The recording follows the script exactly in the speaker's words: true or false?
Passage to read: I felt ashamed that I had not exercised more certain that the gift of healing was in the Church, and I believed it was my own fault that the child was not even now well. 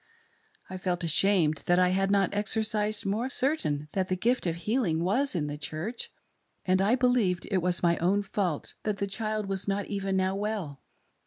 true